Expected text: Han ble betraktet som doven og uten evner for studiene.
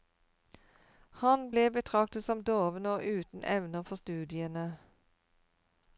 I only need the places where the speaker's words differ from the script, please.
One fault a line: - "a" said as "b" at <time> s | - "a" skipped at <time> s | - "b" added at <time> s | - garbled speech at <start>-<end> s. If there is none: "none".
none